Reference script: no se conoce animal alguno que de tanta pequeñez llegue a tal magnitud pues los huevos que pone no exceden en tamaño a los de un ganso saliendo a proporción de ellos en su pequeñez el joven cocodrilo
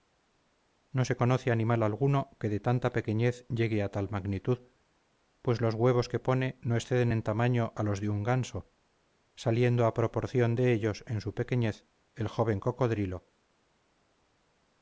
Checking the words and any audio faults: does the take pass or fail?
pass